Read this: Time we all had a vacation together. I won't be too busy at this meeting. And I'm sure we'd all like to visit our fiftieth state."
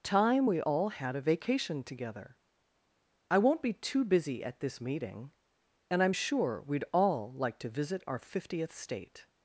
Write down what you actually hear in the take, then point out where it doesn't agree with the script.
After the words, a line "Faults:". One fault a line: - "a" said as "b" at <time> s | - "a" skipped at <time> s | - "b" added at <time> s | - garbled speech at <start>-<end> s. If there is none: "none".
Time we all had a vacation together. I won't be too busy at this meeting. And I'm sure we'd all like to visit our fiftieth state."
Faults:
none